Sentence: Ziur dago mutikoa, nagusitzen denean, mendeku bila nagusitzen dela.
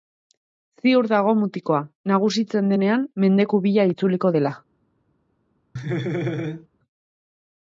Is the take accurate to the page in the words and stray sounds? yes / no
no